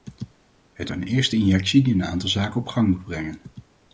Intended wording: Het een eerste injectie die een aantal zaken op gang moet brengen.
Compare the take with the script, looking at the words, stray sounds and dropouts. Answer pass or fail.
pass